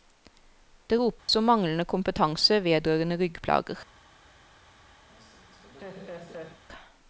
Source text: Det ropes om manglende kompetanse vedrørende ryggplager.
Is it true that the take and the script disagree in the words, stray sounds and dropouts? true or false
true